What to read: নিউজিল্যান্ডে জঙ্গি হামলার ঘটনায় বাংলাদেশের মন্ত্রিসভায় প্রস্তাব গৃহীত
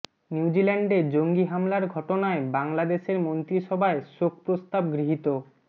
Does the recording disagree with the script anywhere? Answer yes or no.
yes